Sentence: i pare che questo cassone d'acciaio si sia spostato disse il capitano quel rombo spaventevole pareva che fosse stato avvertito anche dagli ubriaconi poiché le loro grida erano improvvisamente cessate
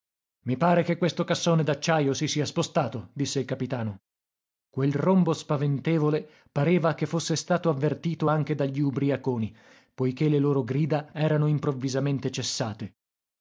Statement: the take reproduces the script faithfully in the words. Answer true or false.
true